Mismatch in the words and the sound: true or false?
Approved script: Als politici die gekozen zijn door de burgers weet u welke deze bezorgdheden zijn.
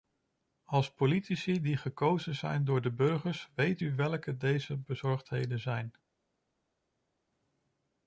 false